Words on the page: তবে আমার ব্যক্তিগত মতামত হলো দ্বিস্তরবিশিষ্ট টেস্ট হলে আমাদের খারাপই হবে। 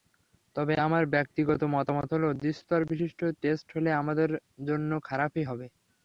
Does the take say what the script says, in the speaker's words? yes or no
no